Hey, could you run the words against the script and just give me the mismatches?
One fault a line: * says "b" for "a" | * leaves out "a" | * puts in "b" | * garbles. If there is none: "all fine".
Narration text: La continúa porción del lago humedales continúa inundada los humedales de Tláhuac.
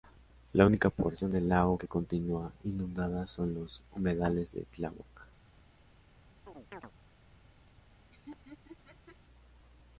* says "única" for "continúa"
* says "que" for "humedales"
* puts in "son"